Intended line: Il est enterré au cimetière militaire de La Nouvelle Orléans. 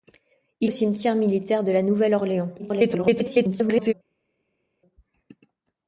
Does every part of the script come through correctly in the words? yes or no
no